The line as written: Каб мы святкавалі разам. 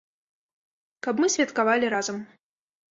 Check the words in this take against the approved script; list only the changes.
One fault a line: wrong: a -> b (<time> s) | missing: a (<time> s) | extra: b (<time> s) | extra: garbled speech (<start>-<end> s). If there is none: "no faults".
no faults